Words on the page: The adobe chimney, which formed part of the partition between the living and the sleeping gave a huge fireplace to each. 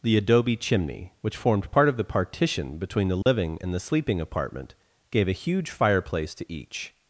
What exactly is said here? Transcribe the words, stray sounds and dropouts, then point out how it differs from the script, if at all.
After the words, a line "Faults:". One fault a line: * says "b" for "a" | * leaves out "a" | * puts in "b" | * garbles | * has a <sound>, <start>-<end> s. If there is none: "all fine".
The adobe chimney, which formed part of the partition between the living and the sleeping apartment, gave a huge fireplace to each.
Faults:
* has a dropout, 3.2-3.3 s
* puts in "apartment"